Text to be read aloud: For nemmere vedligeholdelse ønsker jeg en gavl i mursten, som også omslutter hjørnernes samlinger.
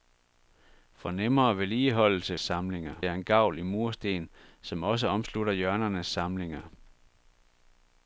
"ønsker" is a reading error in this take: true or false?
true